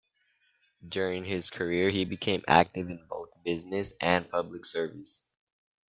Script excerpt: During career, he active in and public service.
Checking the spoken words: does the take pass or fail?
fail